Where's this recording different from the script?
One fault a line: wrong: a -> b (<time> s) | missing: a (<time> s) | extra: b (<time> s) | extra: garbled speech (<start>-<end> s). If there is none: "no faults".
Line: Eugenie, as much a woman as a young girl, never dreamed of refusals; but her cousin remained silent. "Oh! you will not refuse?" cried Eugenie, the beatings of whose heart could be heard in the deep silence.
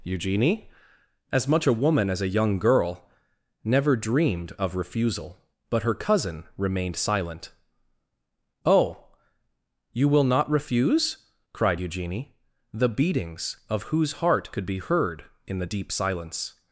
wrong: refusals -> refusal (4.8 s)